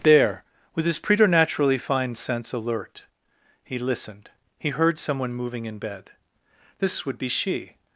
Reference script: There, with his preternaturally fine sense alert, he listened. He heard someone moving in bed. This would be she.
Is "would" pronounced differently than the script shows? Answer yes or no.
no